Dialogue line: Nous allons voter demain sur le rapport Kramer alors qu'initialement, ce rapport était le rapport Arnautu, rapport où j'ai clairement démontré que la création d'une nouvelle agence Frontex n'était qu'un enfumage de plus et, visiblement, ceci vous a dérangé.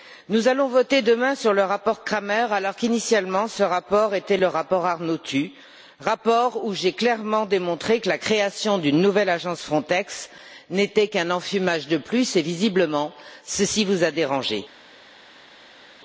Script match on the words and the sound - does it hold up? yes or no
yes